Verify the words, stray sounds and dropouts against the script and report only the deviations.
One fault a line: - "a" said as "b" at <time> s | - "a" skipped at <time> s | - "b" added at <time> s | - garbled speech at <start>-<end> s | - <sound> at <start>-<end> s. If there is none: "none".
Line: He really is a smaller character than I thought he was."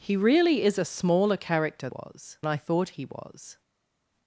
- "than" said as "was" at 1.9 s